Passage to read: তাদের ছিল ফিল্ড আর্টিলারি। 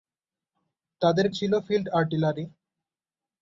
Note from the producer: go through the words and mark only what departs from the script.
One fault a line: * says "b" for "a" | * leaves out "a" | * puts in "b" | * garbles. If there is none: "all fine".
all fine